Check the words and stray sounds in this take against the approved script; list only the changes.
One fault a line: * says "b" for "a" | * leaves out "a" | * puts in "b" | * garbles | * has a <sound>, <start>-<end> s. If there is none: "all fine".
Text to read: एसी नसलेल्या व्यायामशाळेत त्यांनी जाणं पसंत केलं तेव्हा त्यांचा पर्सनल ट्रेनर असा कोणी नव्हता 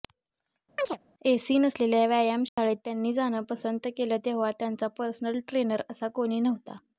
* has a chirp, 0.8-1.0 s
* has a dropout, 2.5-2.6 s